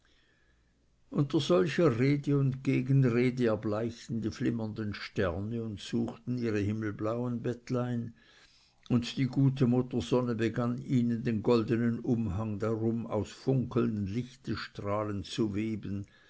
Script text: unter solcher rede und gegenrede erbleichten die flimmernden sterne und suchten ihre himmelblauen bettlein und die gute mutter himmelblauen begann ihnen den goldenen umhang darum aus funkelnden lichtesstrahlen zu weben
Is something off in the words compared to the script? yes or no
yes